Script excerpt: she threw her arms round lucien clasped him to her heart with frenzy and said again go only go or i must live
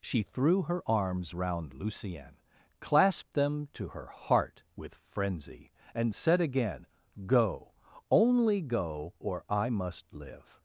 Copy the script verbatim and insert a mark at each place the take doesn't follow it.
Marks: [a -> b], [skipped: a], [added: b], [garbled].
she threw her arms round lucien clasped [him -> them] to her heart with frenzy and said again go only go or i must live